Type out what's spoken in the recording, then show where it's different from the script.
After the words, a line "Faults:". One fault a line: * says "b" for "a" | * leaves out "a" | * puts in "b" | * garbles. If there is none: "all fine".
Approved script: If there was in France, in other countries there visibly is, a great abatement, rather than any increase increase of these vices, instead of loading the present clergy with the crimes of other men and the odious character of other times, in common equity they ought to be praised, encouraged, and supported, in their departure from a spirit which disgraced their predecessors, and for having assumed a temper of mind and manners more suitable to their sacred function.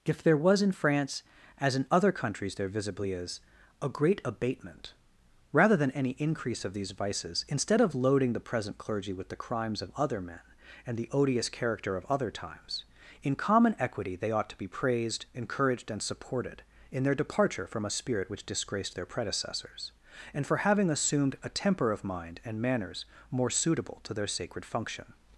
If there was in France, as in other countries there visibly is, a great abatement, rather than any increase of these vices, instead of loading the present clergy with the crimes of other men and the odious character of other times, in common equity they ought to be praised, encouraged, and supported, in their departure from a spirit which disgraced their predecessors, and for having assumed a temper of mind and manners more suitable to their sacred function.
Faults:
* puts in "as"
* leaves out "increase"